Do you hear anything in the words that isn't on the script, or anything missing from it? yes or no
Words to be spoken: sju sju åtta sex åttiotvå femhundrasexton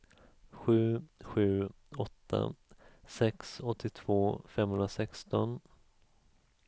no